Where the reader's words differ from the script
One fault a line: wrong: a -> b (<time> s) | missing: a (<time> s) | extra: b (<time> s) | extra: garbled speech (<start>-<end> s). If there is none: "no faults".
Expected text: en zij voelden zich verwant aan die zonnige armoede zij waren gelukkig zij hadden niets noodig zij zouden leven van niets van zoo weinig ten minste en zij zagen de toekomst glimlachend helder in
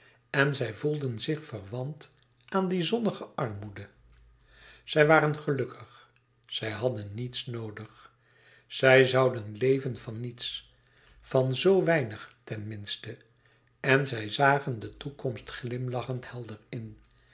no faults